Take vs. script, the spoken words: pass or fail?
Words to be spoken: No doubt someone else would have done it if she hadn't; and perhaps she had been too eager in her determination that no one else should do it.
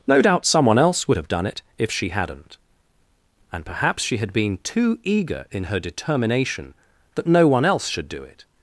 pass